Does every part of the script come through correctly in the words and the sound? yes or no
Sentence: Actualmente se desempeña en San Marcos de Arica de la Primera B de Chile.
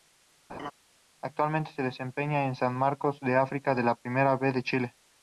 no